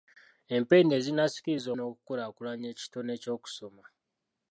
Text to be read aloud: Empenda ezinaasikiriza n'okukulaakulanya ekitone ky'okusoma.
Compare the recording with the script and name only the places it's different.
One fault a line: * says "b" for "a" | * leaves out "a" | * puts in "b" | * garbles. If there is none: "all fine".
all fine